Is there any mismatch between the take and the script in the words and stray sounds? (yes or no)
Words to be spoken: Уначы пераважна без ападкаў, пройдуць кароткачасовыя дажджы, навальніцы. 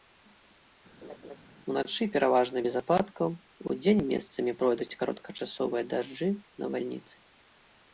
yes